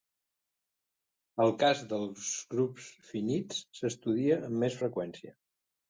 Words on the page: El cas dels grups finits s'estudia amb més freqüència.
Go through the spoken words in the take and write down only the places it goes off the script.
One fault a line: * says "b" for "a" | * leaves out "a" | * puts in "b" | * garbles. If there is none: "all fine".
all fine